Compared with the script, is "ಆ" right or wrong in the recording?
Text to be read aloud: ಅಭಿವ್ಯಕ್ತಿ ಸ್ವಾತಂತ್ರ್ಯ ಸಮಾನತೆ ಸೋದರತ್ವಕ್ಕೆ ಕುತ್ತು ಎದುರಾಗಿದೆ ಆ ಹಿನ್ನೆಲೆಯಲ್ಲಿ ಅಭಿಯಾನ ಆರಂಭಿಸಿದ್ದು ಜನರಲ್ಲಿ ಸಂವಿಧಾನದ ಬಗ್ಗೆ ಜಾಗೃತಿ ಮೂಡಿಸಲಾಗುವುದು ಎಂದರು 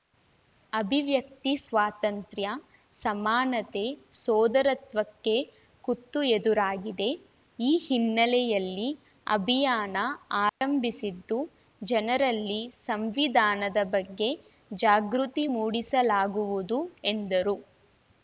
wrong